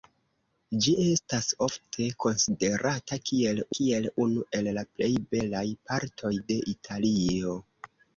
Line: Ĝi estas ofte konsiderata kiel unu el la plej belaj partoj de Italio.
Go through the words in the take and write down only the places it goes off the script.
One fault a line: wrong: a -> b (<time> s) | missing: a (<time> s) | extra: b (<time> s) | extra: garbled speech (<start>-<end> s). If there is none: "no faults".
extra: kiel (3.8 s)